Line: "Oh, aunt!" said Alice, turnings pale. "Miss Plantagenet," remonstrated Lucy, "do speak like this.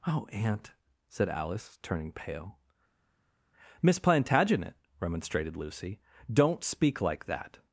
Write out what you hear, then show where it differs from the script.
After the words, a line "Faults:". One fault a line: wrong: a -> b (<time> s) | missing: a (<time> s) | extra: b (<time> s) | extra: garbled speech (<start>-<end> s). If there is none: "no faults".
"Oh, aunt!" said Alice, turning pale. "Miss Plantagenet," remonstrated Lucy, "don't speak like that.
Faults:
wrong: turnings -> turning (1.8 s)
wrong: do -> don't (6.3 s)
wrong: this -> that (7.3 s)